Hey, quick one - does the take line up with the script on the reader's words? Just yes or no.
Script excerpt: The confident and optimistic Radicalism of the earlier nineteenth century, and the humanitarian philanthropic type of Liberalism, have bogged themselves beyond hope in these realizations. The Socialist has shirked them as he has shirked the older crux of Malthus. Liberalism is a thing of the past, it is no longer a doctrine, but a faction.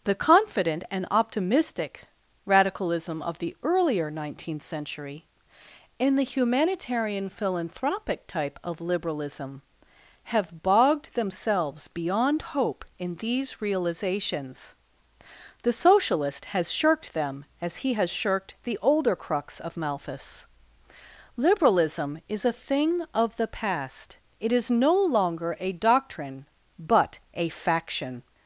yes